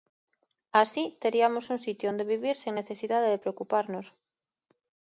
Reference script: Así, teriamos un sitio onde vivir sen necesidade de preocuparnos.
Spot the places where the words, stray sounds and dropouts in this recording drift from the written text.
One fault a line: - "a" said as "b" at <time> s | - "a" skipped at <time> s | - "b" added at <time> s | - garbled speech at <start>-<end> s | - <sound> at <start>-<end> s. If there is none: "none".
none